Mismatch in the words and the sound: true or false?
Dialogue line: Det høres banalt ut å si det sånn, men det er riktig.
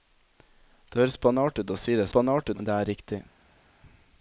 true